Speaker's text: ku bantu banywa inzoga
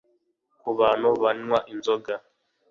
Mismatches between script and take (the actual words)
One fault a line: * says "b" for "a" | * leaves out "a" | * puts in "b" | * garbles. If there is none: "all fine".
all fine